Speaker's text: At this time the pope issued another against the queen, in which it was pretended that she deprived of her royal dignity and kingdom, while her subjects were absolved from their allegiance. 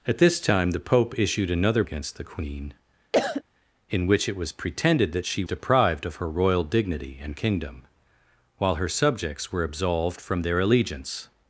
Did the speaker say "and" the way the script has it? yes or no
yes